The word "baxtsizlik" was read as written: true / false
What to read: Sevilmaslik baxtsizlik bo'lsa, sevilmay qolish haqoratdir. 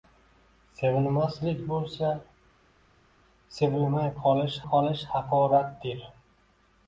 false